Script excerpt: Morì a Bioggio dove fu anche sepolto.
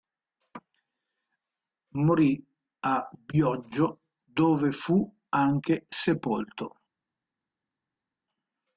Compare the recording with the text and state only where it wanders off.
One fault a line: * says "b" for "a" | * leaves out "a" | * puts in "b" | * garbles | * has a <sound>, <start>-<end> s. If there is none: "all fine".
all fine